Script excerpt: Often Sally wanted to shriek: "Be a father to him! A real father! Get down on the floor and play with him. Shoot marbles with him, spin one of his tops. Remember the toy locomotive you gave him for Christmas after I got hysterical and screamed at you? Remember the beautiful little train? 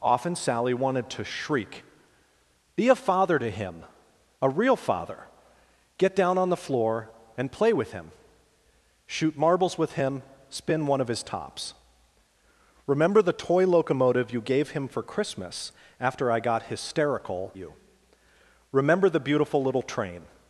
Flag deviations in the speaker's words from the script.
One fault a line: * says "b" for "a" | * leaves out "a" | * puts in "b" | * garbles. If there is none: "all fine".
* leaves out "and screamed at"